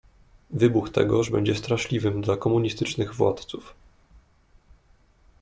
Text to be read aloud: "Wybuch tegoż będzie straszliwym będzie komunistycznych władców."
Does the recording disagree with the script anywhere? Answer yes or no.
yes